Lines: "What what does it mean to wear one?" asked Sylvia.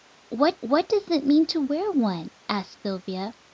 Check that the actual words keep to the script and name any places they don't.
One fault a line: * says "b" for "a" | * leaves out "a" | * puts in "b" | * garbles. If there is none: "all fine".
all fine